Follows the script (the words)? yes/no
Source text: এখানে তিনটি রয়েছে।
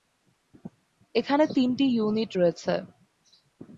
no